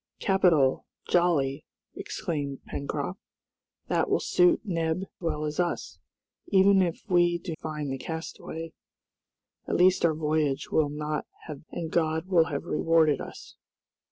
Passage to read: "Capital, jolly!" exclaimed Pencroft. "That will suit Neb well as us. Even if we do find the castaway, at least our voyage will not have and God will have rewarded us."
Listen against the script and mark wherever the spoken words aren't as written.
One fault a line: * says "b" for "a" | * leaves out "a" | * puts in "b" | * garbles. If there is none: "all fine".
all fine